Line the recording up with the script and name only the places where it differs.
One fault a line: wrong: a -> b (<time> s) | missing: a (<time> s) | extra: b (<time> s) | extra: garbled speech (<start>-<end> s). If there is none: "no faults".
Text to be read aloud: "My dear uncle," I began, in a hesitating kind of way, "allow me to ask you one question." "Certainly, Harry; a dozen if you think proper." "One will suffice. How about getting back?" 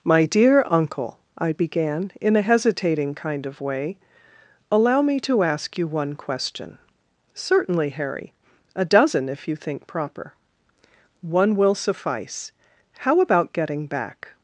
no faults